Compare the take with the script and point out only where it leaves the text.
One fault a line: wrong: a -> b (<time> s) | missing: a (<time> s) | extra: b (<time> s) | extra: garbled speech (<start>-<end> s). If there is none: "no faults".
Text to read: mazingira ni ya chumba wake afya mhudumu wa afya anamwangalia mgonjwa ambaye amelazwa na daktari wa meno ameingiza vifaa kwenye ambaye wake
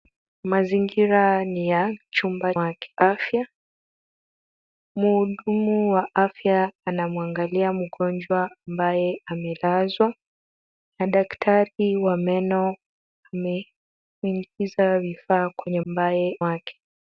no faults